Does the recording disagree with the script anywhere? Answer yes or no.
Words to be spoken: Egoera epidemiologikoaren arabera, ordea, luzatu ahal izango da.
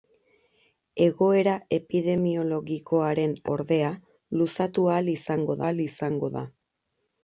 yes